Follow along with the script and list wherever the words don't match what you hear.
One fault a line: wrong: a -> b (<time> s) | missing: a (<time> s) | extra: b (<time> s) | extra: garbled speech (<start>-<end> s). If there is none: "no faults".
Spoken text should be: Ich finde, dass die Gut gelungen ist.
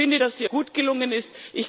no faults